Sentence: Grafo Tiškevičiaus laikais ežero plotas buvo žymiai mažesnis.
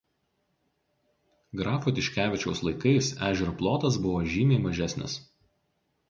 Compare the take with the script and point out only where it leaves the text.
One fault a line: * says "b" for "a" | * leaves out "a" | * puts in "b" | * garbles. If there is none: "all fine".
all fine